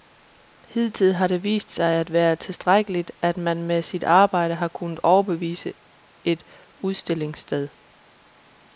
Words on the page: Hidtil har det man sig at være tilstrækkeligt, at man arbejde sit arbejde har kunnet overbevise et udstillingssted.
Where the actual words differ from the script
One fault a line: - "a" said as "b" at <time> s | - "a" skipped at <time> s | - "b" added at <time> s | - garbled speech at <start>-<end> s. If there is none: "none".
- "man" said as "vist" at 1.4 s
- "arbejde" said as "med" at 3.6 s